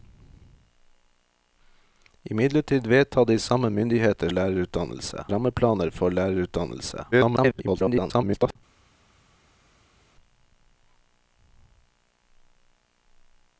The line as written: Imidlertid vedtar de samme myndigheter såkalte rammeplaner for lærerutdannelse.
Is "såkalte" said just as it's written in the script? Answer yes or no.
no